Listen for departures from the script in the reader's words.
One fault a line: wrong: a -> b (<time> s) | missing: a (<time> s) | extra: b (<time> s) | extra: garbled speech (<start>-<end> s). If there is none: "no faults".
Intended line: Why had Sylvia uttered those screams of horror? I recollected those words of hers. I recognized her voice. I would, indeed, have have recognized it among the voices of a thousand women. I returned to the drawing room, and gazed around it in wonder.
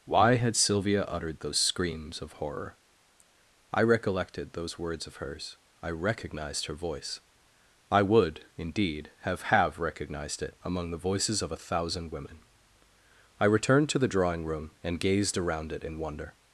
no faults